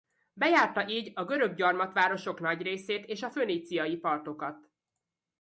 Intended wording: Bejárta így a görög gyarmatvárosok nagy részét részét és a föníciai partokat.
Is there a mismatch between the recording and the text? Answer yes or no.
yes